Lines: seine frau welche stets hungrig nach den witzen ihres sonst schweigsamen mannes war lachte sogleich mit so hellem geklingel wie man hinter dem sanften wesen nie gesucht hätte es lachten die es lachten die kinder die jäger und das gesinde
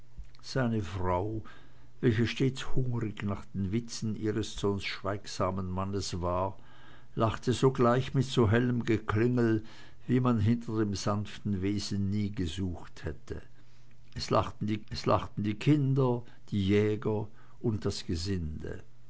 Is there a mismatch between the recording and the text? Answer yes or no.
no